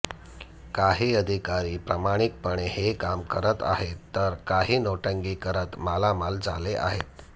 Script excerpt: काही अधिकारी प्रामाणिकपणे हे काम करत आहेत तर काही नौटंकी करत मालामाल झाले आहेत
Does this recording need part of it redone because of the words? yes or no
no